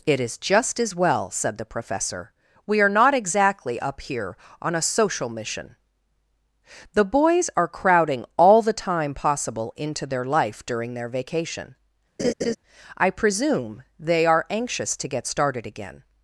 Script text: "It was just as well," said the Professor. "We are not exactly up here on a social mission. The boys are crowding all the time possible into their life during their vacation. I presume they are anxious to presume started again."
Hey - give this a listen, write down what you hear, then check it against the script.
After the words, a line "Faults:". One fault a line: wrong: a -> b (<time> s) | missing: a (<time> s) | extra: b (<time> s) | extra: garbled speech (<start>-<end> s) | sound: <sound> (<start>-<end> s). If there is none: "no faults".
"It is just as well," said the Professor. "We are not exactly up here on a social mission. The boys are crowding all the time possible into their life during their vacation. I presume they are anxious to get started again."
Faults:
wrong: was -> is (0.2 s)
sound: laugh (12.2-12.6 s)
wrong: presume -> get (15.1 s)